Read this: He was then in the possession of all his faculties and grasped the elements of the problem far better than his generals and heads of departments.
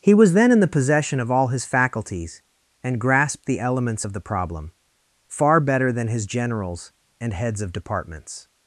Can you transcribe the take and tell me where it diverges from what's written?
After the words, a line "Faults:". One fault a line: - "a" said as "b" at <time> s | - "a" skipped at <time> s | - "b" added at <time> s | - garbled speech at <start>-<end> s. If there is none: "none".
He was then in the possession of all his faculties and grasped the elements of the problem far better than his generals and heads of departments.
Faults:
none